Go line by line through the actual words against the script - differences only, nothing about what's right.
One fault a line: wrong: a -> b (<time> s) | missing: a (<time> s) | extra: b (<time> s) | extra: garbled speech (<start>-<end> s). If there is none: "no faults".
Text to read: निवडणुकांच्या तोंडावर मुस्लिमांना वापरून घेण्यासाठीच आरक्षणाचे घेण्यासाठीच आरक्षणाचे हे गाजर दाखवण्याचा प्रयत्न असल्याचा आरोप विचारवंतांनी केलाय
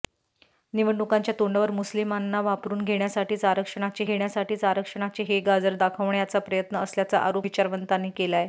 no faults